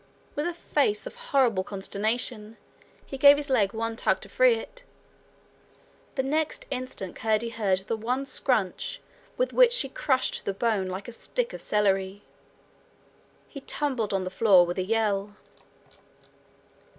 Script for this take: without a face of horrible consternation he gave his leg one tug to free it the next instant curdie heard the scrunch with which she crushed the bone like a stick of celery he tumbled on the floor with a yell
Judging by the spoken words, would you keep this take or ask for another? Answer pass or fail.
fail